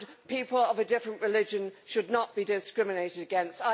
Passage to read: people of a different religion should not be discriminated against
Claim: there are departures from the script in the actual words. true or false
false